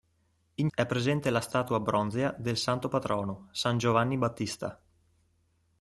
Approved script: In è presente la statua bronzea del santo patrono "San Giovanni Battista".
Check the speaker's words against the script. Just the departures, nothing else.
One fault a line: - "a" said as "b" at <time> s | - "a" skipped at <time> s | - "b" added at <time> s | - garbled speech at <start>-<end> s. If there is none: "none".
none